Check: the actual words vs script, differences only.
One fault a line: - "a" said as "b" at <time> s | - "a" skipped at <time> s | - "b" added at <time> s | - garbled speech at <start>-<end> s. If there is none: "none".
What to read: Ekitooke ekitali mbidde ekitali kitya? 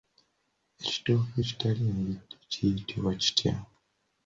- "ekitali" said as "kiyitibwa" at 2.5 s